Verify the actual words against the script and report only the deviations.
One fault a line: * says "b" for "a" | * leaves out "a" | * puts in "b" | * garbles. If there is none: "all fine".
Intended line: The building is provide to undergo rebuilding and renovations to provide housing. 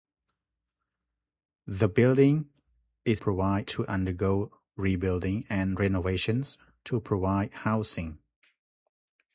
all fine